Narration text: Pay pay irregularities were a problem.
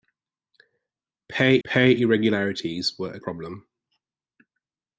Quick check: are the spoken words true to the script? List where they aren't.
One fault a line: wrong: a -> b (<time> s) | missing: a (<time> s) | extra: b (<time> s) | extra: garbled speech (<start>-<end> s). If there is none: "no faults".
no faults